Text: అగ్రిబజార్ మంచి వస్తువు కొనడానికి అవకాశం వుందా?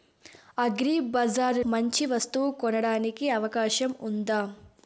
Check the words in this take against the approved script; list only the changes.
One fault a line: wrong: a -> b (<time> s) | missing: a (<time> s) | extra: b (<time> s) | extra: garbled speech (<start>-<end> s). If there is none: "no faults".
no faults